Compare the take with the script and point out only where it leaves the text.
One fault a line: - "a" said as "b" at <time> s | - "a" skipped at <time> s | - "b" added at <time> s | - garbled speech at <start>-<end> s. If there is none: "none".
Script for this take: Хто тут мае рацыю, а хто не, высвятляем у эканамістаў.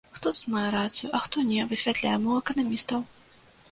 none